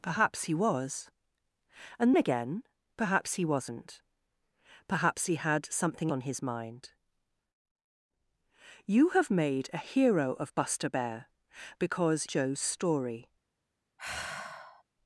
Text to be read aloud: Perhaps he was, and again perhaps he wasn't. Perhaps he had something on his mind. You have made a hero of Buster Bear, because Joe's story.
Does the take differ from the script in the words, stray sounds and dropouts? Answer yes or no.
yes